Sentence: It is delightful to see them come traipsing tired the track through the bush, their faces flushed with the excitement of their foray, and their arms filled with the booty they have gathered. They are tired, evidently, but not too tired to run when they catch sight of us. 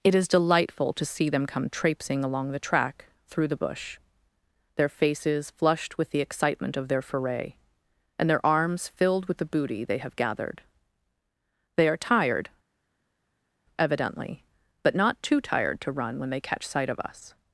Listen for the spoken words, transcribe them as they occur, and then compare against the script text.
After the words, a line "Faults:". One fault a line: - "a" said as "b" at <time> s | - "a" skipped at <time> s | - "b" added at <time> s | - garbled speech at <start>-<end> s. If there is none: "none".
It is delightful to see them come traipsing along the track through the bush, their faces flushed with the excitement of their foray, and their arms filled with the booty they have gathered. They are tired, evidently, but not too tired to run when they catch sight of us.
Faults:
- "tired" said as "along" at 2.2 s